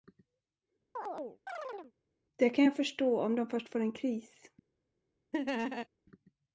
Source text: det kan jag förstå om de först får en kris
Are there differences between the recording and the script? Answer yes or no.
no